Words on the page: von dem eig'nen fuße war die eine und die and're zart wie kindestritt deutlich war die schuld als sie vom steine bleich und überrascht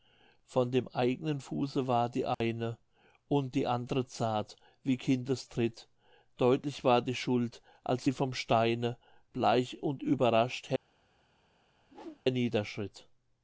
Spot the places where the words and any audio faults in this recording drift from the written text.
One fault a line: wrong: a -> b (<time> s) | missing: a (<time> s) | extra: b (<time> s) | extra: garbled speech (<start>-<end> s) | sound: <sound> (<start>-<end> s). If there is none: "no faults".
sound: dropout (2.3-2.4 s)
sound: whoosh (11.8-12.2 s)